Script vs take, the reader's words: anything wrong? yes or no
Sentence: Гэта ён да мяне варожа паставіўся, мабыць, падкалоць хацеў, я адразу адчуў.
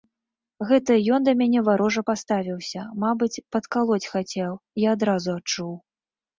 no